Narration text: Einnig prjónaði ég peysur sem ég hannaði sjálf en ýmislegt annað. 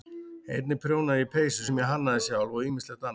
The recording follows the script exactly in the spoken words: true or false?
false